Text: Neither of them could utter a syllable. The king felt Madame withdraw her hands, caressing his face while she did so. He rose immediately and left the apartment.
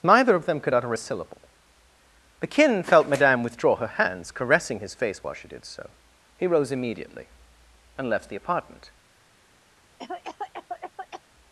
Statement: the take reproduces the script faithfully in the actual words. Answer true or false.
false